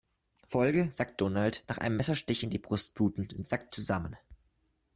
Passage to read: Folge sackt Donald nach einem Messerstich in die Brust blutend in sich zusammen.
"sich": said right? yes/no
no